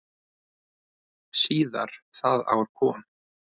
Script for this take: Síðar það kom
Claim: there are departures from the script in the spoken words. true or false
true